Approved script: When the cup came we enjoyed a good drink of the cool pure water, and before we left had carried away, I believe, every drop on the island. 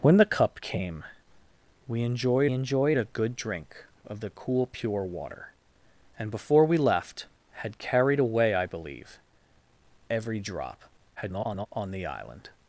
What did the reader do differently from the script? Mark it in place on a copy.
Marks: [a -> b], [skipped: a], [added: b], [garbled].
When the cup came we enjoyed [added: enjoyed] a good drink of the cool pure water, and before we left had carried away, I believe, every drop [garbled] on the island.